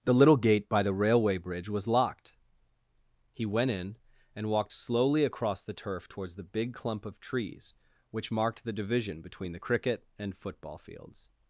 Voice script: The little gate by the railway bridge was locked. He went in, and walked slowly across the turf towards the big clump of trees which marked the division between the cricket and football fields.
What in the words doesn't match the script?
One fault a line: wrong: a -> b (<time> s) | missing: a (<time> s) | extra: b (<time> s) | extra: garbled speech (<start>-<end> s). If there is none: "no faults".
no faults